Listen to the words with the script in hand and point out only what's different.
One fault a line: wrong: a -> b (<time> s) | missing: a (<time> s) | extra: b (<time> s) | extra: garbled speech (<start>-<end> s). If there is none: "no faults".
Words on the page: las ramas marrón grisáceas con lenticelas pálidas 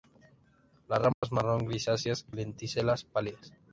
missing: con (2.2 s)